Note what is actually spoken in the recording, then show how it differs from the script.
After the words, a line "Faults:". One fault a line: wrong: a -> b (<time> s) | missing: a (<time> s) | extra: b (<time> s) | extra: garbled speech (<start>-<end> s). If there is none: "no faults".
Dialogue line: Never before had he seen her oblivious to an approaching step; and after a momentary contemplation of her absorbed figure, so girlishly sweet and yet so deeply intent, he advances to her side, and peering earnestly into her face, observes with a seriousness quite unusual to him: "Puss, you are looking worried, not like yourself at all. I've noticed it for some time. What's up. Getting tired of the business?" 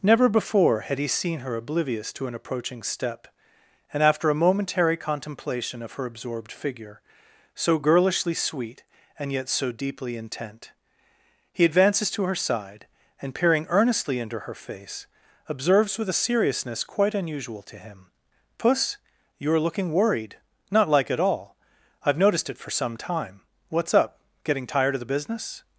Never before had he seen her oblivious to an approaching step; and after a momentary contemplation of her absorbed figure, so girlishly sweet and yet so deeply intent, he advances to her side, and peering earnestly into her face, observes with a seriousness quite unusual to him: "Puss, you are looking worried, not like at all. I've noticed it for some time. What's up. Getting tired of the business?"
Faults:
missing: yourself (21.1 s)